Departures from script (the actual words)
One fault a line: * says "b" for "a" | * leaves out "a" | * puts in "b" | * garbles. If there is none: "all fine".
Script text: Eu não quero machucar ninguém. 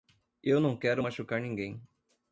all fine